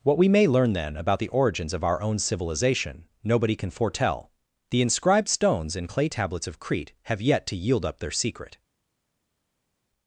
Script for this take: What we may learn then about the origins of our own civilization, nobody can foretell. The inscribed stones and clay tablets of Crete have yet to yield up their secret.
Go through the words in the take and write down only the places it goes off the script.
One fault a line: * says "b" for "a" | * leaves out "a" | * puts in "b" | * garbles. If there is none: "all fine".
all fine